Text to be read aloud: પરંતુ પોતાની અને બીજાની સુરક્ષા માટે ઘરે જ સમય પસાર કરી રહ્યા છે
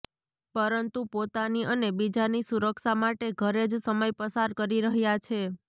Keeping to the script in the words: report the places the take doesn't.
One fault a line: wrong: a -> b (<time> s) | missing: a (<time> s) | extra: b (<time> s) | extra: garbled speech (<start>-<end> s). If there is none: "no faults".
no faults